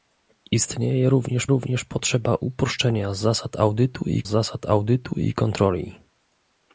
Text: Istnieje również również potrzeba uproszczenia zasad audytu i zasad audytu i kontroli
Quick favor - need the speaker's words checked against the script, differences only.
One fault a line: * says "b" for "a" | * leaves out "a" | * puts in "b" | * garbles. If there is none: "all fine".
all fine